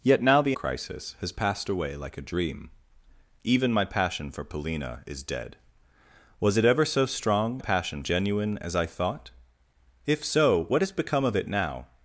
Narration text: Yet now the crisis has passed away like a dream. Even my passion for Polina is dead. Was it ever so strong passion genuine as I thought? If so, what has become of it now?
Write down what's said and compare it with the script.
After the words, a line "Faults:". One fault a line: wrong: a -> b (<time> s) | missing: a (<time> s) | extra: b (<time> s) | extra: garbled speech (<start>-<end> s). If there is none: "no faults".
Yet now the crisis has passed away like a dream. Even my passion for Polina is dead. Was it ever so strong passion genuine as I thought? If so, what has become of it now?
Faults:
no faults